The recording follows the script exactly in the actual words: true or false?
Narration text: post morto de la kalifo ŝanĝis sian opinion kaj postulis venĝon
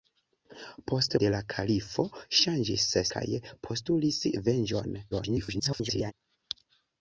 false